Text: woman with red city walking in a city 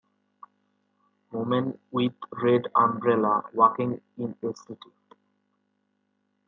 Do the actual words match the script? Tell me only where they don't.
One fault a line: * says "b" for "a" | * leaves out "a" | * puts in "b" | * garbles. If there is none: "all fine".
* says "umbrella" for "city"